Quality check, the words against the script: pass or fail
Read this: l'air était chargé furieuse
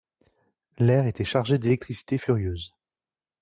fail